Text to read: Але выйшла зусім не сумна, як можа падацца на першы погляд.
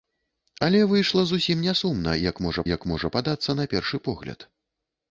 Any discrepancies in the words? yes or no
yes